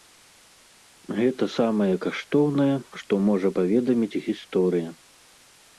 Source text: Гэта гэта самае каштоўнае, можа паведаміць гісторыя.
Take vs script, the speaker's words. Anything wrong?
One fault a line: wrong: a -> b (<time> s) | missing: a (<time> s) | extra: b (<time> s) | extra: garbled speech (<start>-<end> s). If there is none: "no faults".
missing: гэта (1.4 s)
extra: што (3.0 s)